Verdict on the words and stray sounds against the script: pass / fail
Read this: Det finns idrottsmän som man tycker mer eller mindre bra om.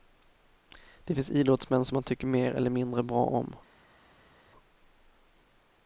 pass